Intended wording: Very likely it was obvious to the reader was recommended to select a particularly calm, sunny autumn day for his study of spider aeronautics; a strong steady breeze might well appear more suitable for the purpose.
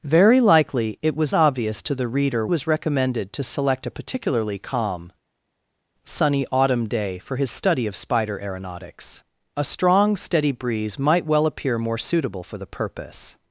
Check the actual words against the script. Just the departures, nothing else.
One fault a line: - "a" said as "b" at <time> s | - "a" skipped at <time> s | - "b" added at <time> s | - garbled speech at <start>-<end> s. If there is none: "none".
none